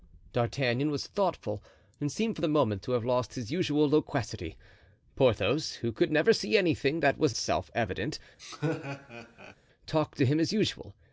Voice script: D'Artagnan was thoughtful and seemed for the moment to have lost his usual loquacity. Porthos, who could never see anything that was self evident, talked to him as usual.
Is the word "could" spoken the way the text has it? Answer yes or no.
yes